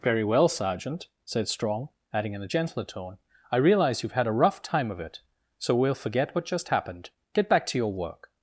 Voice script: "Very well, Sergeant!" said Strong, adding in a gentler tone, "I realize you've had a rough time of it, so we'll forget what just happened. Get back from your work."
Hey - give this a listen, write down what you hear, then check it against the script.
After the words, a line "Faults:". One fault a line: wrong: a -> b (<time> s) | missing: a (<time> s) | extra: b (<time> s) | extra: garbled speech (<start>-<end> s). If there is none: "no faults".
"Very well, Sergeant!" said Strong, adding in a gentler tone, "I realize you've had a rough time of it, so we'll forget what just happened. Get back to your work."
Faults:
wrong: from -> to (7.7 s)